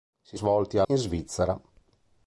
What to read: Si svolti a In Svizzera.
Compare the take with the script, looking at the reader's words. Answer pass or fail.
pass